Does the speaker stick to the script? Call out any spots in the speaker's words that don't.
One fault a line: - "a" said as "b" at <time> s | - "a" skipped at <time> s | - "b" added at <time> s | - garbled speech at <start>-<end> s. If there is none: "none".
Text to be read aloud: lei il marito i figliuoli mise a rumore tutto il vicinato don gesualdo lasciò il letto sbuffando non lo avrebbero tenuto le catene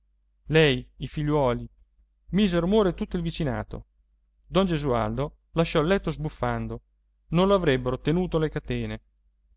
- "il marito" skipped at 0.9 s